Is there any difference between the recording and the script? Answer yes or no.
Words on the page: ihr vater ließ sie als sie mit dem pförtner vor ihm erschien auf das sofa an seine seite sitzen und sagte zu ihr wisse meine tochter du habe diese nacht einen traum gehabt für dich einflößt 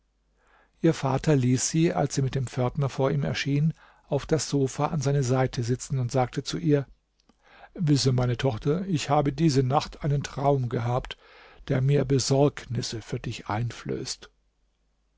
yes